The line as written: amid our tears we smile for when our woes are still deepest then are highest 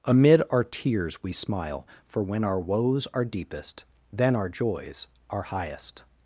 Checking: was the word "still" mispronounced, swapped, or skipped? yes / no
yes